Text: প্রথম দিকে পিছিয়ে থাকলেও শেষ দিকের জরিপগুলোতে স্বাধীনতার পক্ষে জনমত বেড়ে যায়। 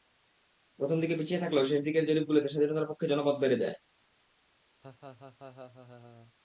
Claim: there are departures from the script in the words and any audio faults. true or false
true